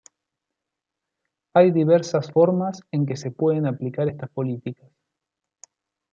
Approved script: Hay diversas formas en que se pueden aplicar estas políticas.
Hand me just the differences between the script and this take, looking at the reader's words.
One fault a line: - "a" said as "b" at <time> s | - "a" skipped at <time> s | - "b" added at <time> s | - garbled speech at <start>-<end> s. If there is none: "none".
none